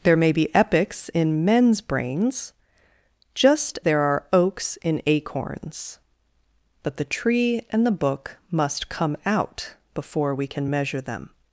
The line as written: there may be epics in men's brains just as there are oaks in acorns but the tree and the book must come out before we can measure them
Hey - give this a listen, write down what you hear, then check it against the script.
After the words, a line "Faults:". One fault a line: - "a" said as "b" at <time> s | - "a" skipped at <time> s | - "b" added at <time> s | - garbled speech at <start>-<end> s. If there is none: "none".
there may be epics in men's brains just there are oaks in acorns but the tree and the book must come out before we can measure them
Faults:
- "as" skipped at 3.8 s